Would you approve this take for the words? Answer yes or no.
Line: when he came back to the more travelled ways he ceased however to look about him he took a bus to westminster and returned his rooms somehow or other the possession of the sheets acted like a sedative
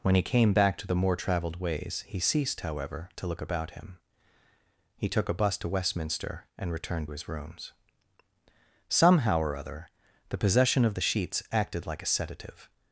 yes